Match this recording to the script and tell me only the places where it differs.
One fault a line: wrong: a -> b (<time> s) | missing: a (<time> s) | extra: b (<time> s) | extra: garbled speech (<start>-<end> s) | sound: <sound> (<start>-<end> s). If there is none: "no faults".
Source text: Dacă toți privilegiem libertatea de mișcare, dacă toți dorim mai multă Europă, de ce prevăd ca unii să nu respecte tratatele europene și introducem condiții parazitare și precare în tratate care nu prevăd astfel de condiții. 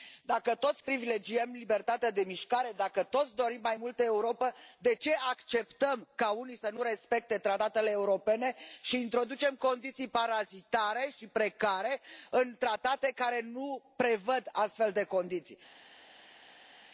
wrong: prevăd -> acceptăm (5.3 s)